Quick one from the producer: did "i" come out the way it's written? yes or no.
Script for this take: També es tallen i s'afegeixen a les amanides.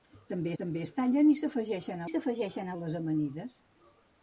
yes